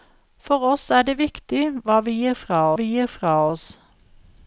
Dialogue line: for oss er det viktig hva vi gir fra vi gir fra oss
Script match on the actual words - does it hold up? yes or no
yes